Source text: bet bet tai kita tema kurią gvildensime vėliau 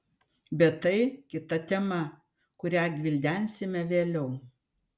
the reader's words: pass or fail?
fail